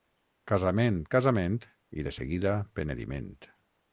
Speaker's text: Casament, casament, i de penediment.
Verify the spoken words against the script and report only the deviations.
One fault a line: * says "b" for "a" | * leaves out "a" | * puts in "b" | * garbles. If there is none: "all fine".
* puts in "seguida"